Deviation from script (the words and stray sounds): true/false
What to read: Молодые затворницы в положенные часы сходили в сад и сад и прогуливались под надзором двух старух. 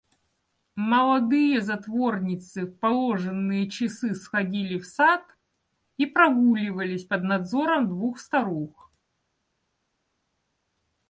true